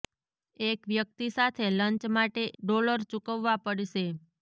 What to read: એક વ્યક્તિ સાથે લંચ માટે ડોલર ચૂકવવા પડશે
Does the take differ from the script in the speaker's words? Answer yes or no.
no